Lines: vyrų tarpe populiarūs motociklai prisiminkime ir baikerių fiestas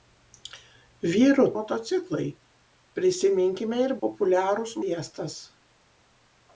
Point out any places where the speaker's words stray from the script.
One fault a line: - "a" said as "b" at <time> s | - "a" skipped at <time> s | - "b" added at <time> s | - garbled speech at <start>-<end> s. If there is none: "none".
- "tarpe populiarūs" skipped at 1.4 s
- "baikerių" said as "populiarūs" at 4.0 s